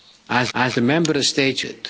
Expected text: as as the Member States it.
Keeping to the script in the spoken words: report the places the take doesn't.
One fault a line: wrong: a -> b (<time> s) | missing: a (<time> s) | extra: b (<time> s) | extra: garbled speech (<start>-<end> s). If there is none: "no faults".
no faults